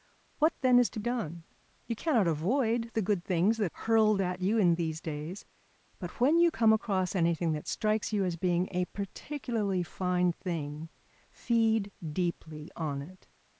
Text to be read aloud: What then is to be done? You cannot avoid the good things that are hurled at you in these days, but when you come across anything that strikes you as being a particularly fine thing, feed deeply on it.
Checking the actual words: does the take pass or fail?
fail